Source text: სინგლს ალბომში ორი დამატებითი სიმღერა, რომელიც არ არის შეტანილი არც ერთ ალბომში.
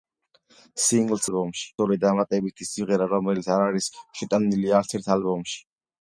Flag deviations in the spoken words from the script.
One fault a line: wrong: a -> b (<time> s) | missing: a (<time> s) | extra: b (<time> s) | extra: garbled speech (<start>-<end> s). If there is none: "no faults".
no faults